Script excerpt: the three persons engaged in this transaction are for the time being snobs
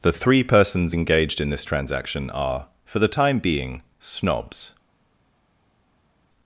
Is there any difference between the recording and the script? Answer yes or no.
no